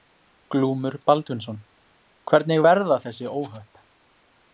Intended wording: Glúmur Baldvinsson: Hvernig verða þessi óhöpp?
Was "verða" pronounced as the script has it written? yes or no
yes